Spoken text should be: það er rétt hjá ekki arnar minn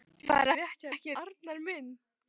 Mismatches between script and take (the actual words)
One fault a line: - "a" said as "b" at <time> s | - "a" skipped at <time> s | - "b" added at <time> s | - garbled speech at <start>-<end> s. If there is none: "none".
none